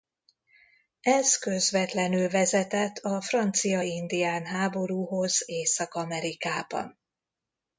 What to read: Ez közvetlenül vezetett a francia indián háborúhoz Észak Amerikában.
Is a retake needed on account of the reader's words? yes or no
no